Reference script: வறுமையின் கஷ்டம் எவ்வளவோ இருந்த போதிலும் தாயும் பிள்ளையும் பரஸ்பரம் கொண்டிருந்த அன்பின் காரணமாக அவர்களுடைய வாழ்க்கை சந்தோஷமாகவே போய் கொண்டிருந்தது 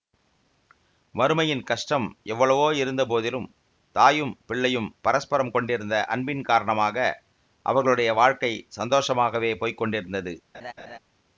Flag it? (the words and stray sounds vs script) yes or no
yes